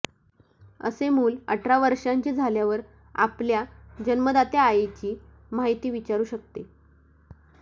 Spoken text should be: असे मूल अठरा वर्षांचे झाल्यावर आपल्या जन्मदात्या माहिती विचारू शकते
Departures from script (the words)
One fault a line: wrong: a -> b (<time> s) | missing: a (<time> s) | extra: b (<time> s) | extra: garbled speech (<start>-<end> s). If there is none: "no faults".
extra: आईची (4.6 s)